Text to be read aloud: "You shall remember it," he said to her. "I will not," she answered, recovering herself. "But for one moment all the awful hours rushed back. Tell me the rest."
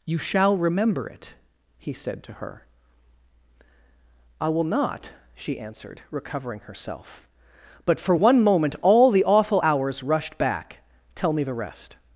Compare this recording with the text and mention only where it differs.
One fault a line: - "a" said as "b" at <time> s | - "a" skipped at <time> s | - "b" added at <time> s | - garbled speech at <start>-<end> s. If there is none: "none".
none